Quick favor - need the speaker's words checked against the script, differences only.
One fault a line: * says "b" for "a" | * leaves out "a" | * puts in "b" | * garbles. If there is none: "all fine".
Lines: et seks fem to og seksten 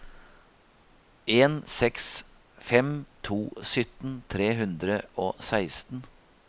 * says "en" for "et"
* puts in "sytten tre hundre"